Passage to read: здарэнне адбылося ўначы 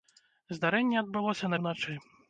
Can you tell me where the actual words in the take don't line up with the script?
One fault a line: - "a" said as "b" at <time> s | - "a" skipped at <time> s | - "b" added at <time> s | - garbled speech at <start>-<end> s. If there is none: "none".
none